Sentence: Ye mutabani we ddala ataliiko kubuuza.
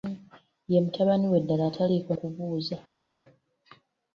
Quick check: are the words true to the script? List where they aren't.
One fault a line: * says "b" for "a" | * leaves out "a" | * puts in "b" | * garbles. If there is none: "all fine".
all fine